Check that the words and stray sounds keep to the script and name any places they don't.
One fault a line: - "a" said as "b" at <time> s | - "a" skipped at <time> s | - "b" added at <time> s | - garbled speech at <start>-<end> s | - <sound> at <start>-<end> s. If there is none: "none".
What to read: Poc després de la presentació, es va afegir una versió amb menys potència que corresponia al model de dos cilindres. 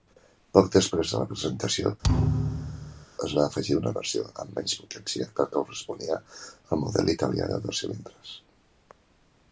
- thud at 2.0-3.1 s
- "italià" added at 7.2 s